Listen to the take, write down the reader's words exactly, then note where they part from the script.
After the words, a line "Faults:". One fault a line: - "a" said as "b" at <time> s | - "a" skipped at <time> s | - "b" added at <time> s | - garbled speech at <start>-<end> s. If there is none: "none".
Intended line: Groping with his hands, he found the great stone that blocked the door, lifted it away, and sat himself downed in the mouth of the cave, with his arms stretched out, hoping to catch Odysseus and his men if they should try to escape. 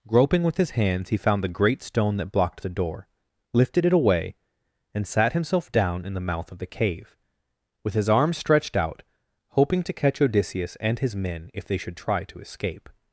Groping with his hands, he found the great stone that blocked the door, lifted it away, and sat himself down in the mouth of the cave, with his arms stretched out, hoping to catch Odysseus and his men if they should try to escape.
Faults:
- "downed" said as "down" at 5.7 s